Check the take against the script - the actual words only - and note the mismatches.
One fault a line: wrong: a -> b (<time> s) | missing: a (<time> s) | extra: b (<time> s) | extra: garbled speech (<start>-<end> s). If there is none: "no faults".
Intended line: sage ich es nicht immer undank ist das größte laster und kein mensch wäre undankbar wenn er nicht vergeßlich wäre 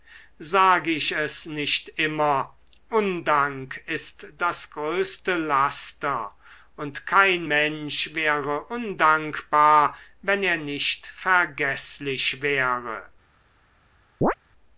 no faults